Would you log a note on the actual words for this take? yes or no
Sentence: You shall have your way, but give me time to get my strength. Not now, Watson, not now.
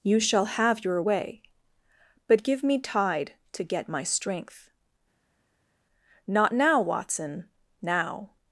yes